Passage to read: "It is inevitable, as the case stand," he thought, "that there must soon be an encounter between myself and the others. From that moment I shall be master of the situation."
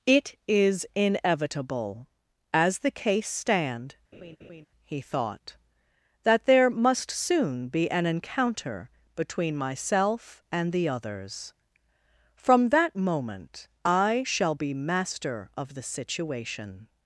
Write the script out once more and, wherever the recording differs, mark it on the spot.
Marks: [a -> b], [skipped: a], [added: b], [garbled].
"It is inevitable, as the case stand," he thought, "that there must soon be an encounter between myself and the others. From that moment I shall be master of the situation."